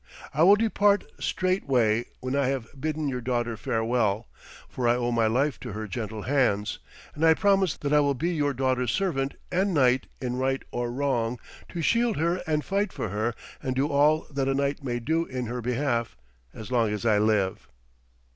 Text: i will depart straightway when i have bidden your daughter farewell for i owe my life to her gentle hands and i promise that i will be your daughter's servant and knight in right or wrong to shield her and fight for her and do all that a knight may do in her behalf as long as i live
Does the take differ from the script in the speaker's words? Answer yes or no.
no